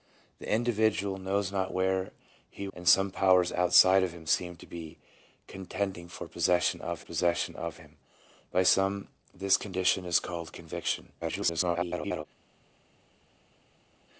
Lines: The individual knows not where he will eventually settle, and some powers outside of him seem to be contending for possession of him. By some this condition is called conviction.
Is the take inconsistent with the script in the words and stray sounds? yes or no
yes